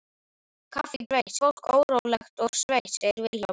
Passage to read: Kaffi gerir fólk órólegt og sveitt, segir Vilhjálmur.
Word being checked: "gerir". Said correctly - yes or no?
no